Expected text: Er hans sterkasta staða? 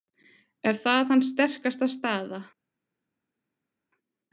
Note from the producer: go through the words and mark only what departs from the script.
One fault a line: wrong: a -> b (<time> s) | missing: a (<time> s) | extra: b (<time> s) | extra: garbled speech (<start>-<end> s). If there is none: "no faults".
extra: það (0.8 s)